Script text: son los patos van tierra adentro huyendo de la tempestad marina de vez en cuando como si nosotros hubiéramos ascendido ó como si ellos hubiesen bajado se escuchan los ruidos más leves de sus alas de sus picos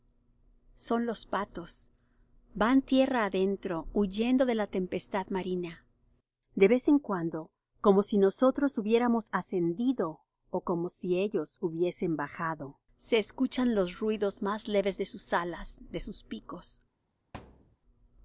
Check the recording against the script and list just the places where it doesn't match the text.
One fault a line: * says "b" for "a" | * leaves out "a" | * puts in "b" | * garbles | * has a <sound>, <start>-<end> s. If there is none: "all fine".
* has a thud, 17.3-17.8 s